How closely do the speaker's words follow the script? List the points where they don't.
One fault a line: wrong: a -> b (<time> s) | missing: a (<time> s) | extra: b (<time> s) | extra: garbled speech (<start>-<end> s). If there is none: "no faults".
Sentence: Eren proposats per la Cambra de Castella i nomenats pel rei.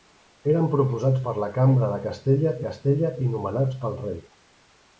extra: Castella (2.7 s)